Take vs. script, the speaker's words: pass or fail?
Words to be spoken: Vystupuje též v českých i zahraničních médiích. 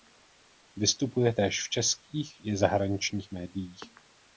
pass